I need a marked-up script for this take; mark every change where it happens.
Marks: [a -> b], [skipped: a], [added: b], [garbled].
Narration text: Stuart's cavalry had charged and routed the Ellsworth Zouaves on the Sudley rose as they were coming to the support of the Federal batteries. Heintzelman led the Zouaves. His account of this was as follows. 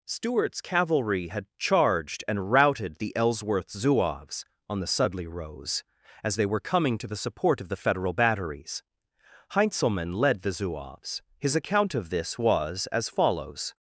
Stuart's cavalry had charged and routed the Ellsworth Zouaves on the Sudley rose as they were coming to the support of the Federal batteries. Heintzelman led the Zouaves. His account of this was as follows.